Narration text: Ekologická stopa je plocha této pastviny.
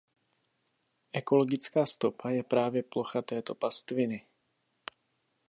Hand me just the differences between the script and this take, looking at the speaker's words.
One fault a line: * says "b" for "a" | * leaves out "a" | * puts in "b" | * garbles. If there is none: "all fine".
* puts in "právě"